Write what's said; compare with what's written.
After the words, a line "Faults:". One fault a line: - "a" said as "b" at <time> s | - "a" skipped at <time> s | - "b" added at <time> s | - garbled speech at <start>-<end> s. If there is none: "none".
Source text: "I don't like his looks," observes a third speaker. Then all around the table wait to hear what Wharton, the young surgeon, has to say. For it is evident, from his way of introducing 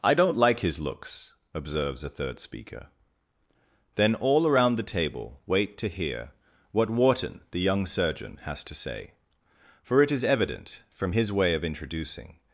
"I don't like his looks," observes a third speaker. Then all around the table wait to hear what Wharton, the young surgeon, has to say. For it is evident, from his way of introducing
Faults:
none